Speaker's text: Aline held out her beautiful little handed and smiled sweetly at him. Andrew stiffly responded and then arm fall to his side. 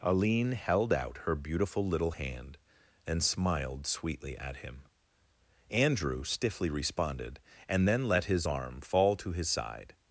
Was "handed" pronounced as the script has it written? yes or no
no